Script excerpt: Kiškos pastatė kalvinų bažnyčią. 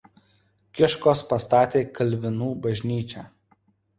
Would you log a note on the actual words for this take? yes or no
no